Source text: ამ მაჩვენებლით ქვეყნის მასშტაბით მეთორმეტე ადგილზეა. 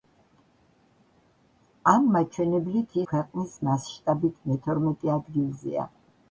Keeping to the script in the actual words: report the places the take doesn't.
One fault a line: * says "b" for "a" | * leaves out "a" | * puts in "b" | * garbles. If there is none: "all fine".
all fine